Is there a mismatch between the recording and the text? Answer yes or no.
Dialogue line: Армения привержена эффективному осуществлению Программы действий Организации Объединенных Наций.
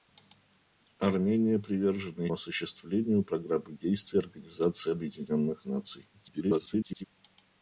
yes